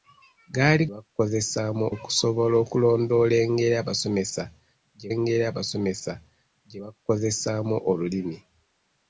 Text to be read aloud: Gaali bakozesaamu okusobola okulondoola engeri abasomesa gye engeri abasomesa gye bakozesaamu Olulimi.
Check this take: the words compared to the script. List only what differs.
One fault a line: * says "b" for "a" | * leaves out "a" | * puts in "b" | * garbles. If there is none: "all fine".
all fine